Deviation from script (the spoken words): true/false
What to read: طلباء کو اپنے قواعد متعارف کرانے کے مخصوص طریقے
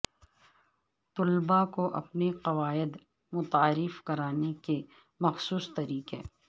false